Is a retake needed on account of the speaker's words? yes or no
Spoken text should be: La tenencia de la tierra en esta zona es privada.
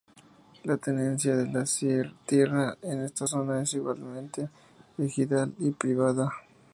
yes